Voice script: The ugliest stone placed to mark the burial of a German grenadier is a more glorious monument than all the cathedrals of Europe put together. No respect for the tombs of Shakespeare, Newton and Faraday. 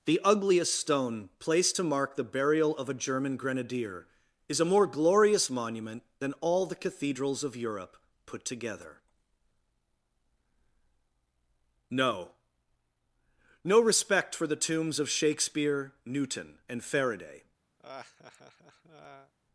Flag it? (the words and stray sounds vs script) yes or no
yes